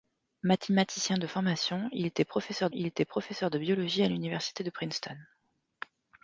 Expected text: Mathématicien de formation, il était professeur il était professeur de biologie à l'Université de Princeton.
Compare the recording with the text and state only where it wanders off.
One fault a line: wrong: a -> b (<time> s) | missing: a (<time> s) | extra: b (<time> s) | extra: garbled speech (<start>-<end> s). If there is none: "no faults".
no faults